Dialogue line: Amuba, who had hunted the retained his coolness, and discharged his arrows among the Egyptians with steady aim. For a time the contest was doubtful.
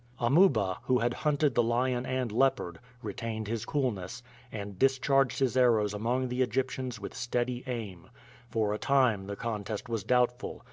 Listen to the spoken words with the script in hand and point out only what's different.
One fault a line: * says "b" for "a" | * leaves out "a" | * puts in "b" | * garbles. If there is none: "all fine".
* puts in "lion and leopard"